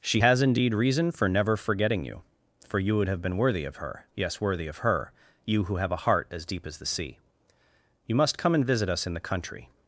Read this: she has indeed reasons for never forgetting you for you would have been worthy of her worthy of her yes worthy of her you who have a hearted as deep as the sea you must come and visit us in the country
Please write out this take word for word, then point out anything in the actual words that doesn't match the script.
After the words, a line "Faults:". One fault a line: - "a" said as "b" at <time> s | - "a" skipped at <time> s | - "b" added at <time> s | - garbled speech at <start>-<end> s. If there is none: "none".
she has indeed reason for never forgetting you for you would have been worthy of her yes worthy of her you who have a heart as deep as the sea you must come and visit us in the country
Faults:
- "reasons" said as "reason" at 0.7 s
- "worthy of her" skipped at 4.1 s
- "hearted" said as "heart" at 6.0 s